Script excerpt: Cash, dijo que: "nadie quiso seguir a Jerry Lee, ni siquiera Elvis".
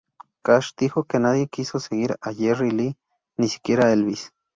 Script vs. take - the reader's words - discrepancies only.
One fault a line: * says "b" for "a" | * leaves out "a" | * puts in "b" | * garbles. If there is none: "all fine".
all fine